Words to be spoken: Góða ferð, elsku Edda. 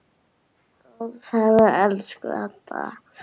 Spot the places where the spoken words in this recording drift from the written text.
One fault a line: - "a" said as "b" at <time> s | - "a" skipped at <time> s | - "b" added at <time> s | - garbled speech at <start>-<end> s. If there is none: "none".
none